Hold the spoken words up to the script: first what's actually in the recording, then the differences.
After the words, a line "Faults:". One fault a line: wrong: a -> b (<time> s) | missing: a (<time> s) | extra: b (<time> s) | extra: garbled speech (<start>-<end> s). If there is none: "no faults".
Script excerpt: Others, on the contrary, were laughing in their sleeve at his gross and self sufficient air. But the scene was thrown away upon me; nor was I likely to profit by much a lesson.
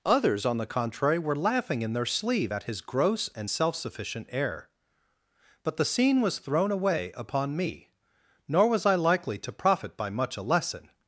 Others, on the contrary, were laughing in their sleeve at his gross and self sufficient air. But the scene was thrown away upon me; nor was I likely to profit by much a lesson.
Faults:
no faults